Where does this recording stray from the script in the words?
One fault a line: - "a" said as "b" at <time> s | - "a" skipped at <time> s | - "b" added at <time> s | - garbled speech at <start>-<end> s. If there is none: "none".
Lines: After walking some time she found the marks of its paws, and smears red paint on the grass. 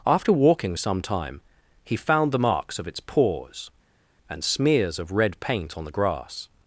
- "she" said as "he" at 1.8 s
- "of" added at 5.0 s